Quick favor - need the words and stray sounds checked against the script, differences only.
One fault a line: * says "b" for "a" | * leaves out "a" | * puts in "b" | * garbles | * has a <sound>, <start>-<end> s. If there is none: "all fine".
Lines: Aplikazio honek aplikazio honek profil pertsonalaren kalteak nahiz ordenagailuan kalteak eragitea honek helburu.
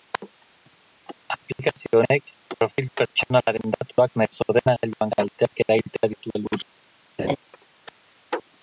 * leaves out "aplikazio honek"
* says "datuak" for "kalteak"
* says "ditu" for "honek"
* has a laugh, 7.2-7.4 s